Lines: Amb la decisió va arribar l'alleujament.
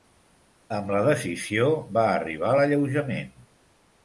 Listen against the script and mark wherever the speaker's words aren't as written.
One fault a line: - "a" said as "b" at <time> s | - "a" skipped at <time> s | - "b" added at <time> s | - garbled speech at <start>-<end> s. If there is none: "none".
none